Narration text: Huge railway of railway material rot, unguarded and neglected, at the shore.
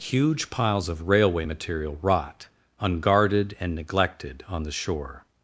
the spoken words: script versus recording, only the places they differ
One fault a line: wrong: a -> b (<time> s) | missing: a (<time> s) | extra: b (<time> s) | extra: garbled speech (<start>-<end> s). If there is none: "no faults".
wrong: railway -> piles (0.5 s)
wrong: at -> on (4.5 s)